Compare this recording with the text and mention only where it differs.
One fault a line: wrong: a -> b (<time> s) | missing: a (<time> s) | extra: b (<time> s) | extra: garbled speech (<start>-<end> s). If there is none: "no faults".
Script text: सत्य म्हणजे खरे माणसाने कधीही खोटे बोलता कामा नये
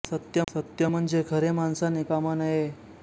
extra: सत्य (0.5 s)
missing: कधीही खोटे बोलता (2.0 s)